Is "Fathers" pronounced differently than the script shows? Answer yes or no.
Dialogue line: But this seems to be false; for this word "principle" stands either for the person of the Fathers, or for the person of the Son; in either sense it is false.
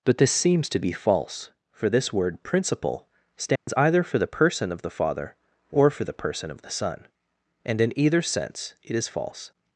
yes